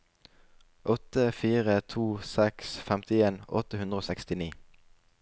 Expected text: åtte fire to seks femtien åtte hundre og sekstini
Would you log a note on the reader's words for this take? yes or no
no